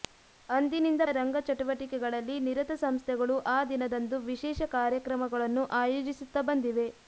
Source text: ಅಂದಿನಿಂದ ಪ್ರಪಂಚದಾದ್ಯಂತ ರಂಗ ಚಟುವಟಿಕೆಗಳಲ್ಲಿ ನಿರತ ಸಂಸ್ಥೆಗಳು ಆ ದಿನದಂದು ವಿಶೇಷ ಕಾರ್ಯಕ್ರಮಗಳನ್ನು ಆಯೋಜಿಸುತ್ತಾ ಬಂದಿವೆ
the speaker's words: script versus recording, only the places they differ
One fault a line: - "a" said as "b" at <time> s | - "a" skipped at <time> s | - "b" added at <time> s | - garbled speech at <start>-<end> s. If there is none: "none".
- "ಪ್ರಪಂಚದಾದ್ಯಂತ" skipped at 1.0 s